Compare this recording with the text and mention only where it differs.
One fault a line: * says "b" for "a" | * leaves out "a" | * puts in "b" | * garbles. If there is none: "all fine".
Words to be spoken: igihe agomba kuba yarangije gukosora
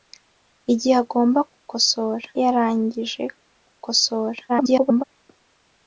* says "gukosora" for "kuba"
* garbles